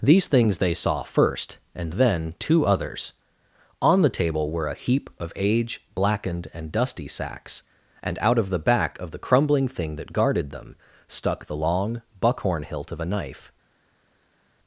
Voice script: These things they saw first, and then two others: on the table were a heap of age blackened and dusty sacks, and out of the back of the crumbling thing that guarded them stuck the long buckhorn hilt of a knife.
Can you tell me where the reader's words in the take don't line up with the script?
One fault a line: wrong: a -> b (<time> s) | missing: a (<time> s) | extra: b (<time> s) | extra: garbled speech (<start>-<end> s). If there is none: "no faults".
no faults